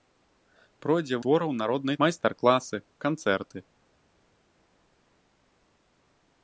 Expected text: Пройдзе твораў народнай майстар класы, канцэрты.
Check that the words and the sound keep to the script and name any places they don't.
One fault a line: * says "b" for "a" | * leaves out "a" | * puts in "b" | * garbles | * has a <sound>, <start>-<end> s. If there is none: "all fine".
all fine